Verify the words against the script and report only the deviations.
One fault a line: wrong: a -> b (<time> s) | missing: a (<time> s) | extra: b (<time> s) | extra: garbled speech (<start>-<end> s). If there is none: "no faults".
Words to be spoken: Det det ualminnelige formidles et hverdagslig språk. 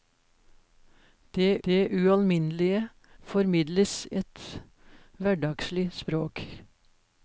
no faults